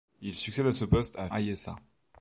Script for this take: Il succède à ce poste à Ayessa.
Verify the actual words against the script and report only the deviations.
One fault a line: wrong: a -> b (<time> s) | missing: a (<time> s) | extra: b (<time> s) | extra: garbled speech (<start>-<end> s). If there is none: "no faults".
no faults